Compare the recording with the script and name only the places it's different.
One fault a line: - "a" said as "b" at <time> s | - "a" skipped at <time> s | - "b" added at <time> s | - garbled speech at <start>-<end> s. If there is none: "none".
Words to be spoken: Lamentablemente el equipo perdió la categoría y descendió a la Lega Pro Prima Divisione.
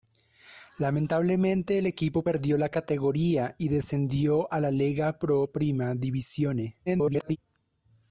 - garbled speech at 6.9-7.4 s